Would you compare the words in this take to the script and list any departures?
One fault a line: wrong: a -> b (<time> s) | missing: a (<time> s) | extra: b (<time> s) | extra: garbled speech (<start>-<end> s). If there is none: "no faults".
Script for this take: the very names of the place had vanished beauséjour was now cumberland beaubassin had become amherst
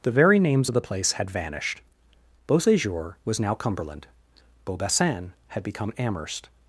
no faults